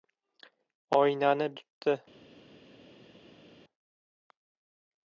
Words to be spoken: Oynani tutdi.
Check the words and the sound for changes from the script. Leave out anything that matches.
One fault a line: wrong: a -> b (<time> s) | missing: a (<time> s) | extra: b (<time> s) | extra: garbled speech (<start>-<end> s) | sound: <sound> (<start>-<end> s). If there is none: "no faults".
no faults